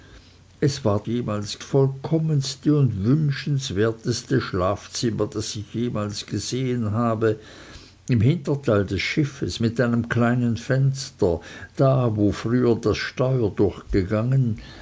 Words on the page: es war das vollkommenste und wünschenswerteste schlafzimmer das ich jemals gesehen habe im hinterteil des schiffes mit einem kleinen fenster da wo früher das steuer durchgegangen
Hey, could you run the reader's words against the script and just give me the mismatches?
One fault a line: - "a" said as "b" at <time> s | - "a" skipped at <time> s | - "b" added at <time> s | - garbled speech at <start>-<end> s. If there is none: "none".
- "das" said as "jemals" at 1.1 s